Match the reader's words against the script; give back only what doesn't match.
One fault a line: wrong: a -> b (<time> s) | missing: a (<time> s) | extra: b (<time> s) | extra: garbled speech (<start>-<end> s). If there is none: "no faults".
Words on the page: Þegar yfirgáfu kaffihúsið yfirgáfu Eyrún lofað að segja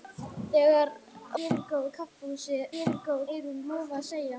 no faults